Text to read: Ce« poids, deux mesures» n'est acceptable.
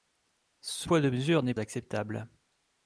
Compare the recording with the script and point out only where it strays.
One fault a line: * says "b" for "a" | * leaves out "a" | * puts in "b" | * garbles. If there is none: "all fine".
all fine